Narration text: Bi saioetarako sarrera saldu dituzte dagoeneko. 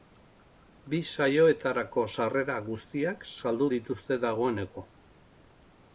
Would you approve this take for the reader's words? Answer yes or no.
no